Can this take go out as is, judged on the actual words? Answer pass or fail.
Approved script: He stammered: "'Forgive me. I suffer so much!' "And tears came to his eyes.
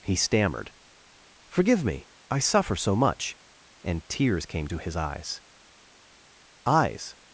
fail